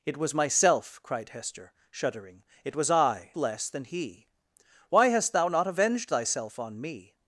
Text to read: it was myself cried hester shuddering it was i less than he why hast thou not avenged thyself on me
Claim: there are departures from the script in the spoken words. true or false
false